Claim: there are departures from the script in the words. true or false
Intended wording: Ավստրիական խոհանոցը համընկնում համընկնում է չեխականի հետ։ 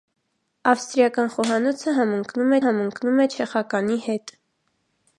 false